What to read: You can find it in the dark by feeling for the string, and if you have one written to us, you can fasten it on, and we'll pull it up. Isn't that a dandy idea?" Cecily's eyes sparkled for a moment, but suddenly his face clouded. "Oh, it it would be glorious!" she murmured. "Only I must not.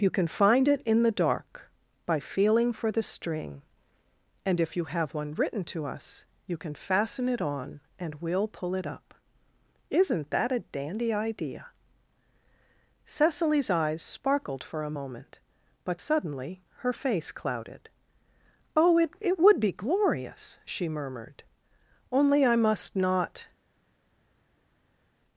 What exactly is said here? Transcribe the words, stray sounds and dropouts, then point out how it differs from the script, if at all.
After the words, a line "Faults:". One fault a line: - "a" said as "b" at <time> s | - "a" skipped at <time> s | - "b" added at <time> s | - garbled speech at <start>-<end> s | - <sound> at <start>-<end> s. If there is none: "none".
You can find it in the dark by feeling for the string, and if you have one written to us, you can fasten it on, and we'll pull it up. Isn't that a dandy idea?" Cecily's eyes sparkled for a moment, but suddenly her face clouded. "Oh, it it would be glorious!" she murmured. "Only I must not.
Faults:
- "his" said as "her" at 16.8 s